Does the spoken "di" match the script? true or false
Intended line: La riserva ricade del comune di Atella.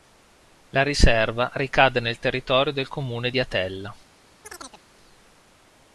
true